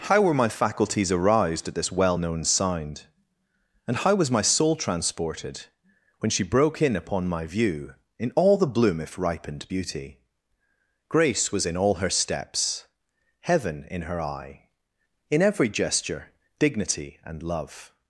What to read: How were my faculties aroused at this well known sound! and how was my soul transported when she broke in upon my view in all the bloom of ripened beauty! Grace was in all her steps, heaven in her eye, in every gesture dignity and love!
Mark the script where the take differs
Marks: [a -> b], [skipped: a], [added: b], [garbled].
How were my faculties aroused at this well known sound! and how was my soul transported when she broke in upon my view in all the bloom [of -> if] ripened beauty! Grace was in all her steps, heaven in her eye, in every gesture dignity and love!